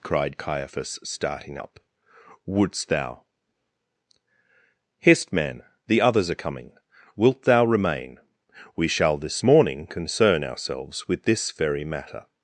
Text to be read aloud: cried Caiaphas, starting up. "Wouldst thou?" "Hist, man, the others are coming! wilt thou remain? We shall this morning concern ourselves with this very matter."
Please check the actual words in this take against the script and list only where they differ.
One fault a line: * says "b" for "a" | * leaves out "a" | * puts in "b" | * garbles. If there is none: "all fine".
all fine